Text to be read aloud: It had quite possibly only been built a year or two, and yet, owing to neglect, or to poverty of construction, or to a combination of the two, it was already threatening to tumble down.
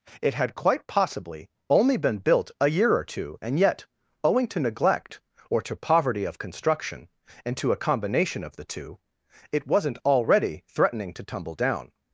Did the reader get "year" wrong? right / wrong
right